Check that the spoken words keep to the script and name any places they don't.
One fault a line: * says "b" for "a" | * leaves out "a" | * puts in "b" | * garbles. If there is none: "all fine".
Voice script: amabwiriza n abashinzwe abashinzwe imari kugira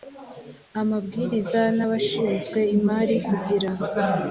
* leaves out "abashinzwe"